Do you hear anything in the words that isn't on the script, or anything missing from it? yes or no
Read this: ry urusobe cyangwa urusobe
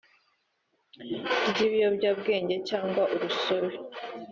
yes